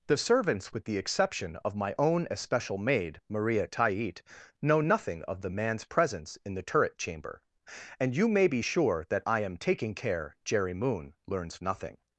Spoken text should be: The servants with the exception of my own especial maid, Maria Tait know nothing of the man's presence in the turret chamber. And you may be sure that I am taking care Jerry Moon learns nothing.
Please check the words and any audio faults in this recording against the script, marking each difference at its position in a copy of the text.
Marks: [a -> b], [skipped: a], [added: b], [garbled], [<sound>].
The servants with the exception of my own especial maid, Maria Tait know nothing of the man's presence in the turret chamber. And you may be sure that I am taking care Jerry Moon learns nothing.